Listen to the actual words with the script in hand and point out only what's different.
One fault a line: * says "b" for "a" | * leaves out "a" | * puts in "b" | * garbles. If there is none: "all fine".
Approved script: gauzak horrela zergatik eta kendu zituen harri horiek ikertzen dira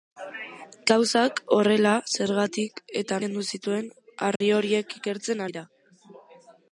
all fine